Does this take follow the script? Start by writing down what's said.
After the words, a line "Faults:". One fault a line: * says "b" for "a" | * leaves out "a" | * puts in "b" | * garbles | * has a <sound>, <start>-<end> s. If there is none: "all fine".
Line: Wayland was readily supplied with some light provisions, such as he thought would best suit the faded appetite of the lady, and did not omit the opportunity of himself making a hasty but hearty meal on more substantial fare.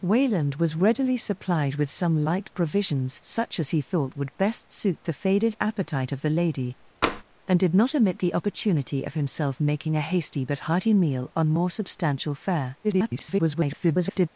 Wayland was readily supplied with some light provisions, such as he thought would best suit the faded appetite of the lady, and did not omit the opportunity of himself making a hasty but hearty meal on more substantial fare. [garbled]
Faults:
* has a tap, 7.0-7.2 s
* garbles